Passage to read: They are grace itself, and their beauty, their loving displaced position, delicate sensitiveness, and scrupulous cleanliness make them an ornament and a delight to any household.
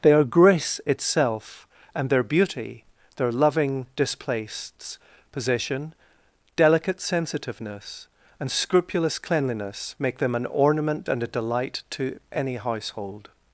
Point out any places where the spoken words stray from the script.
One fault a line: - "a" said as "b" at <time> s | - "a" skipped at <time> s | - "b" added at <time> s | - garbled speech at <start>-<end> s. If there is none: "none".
none